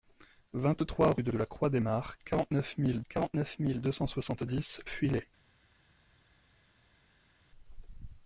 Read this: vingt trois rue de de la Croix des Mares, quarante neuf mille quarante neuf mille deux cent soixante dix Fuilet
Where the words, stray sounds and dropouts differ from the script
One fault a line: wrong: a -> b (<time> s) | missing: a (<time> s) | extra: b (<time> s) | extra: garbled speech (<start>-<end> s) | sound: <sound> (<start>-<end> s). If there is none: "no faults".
no faults